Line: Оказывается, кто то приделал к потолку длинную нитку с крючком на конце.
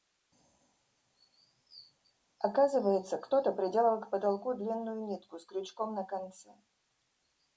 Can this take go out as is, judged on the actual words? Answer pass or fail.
pass